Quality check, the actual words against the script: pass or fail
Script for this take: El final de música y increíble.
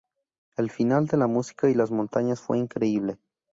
fail